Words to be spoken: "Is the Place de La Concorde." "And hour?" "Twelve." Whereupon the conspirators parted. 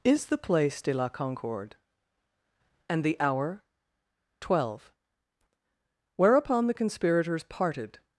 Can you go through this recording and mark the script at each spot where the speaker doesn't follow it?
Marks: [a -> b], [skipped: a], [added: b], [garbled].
"Is the Place de La Concorde." "And [added: the] hour?" "Twelve." Whereupon the conspirators parted.